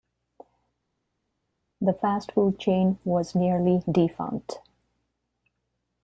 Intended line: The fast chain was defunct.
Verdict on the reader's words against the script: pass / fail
fail